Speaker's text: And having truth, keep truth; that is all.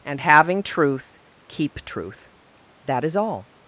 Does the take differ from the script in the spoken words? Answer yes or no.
no